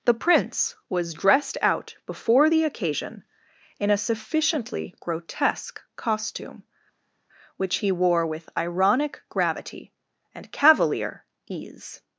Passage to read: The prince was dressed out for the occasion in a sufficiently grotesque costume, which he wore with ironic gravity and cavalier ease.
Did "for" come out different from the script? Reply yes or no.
yes